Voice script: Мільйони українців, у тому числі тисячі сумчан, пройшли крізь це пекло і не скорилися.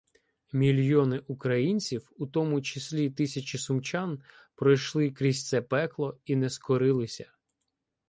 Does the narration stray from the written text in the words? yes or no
no